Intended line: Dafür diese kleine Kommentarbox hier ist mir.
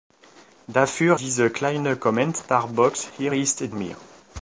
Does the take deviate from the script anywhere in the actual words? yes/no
no